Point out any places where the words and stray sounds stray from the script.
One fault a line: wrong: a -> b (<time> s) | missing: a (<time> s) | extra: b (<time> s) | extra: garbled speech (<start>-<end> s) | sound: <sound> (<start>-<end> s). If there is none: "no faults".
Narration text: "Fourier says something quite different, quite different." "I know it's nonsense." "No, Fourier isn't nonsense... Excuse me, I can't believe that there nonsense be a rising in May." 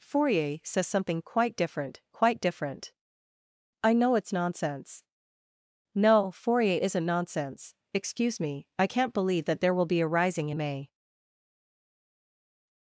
wrong: nonsense -> will (9.7 s)